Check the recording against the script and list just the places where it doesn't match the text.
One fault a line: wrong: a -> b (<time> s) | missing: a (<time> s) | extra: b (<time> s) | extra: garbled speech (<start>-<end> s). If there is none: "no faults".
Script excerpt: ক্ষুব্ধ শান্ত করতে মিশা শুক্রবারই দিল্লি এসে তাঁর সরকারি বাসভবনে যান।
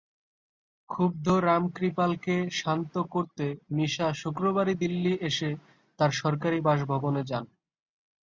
extra: রামকৃপালকে (1.4 s)